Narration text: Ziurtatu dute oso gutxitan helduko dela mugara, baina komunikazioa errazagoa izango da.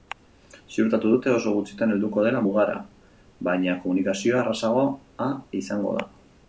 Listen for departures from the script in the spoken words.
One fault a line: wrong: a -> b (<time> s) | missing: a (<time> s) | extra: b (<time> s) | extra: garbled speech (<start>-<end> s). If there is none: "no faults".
no faults